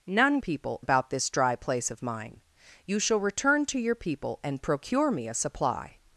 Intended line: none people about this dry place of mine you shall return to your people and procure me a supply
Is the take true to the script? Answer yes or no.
yes